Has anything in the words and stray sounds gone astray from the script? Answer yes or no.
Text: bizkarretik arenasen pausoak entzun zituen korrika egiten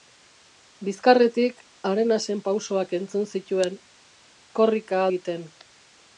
no